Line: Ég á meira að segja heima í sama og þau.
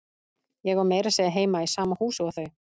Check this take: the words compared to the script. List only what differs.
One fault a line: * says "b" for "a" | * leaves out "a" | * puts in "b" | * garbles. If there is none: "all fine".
* puts in "húsi"